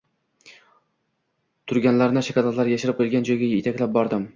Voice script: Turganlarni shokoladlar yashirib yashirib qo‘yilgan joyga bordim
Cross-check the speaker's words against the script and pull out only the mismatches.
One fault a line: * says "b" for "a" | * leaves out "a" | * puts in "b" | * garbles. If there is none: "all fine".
* leaves out "yashirib"
* puts in "yetaklab"